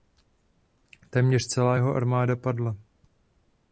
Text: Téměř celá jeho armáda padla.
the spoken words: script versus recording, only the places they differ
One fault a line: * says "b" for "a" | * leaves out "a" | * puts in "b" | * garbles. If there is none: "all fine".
all fine